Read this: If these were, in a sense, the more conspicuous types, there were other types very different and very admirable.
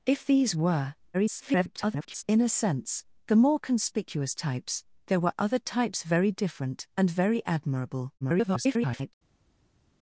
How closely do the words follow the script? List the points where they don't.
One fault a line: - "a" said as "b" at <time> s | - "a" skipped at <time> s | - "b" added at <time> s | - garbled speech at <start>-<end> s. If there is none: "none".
- garbled speech at 1.1-2.2 s
- garbled speech at 8.2-9.1 s